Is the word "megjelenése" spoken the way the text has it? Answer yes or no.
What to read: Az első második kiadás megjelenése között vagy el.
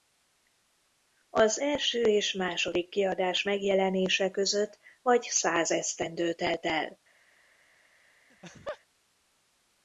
yes